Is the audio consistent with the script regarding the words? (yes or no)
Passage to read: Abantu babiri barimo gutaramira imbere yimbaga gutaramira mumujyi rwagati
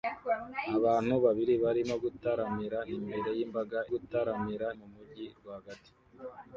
yes